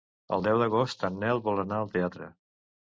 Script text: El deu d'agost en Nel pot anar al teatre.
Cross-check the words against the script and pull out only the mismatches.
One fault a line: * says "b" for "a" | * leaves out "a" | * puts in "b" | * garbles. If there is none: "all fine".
* says "vol" for "pot"